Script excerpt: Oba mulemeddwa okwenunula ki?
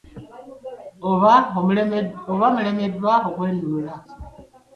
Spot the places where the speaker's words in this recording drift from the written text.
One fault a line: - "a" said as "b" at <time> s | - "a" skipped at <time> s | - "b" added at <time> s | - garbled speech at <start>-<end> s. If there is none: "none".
none